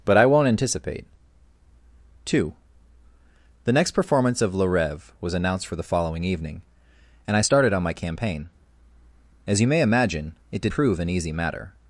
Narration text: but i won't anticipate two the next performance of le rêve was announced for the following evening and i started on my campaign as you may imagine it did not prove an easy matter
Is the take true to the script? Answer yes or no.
no